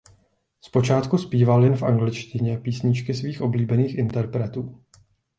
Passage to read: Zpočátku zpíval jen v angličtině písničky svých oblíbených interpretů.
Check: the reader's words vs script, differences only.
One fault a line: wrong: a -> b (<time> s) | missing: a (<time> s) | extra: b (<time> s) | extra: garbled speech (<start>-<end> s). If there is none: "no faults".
no faults